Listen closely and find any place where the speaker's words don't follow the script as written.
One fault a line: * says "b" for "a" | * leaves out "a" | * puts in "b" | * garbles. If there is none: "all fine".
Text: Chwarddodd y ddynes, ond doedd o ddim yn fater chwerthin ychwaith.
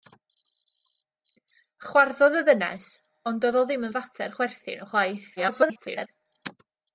* garbles